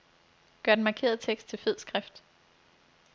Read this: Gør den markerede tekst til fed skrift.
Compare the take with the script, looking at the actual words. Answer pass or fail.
pass